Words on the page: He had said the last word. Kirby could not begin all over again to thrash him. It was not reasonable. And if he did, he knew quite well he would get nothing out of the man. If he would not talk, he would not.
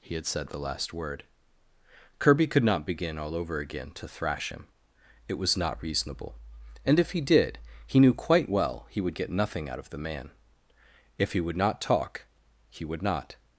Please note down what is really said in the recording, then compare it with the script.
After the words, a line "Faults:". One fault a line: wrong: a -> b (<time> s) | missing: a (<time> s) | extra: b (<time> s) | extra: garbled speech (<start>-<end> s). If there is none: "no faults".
He had said the last word. Kirby could not begin all over again to thrash him. It was not reasonable. And if he did, he knew quite well he would get nothing out of the man. If he would not talk, he would not.
Faults:
no faults